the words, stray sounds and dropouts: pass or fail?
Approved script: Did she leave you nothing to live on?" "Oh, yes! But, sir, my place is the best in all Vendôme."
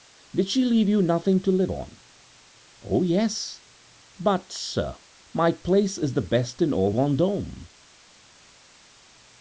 pass